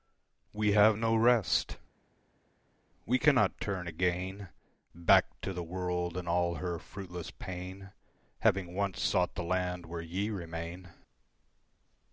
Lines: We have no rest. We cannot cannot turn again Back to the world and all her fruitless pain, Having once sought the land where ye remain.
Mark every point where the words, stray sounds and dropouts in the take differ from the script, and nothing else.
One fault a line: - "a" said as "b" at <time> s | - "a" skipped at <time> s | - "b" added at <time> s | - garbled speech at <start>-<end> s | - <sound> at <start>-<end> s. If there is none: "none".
- "cannot" skipped at 3.6 s